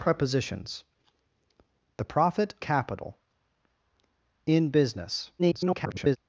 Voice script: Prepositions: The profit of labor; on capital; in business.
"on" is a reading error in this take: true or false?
true